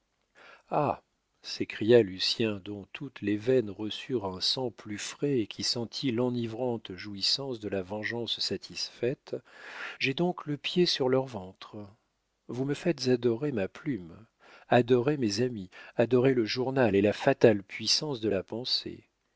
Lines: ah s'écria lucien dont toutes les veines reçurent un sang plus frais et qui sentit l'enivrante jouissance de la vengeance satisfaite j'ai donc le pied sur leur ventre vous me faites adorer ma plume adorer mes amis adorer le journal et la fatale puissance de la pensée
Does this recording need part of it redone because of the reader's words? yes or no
no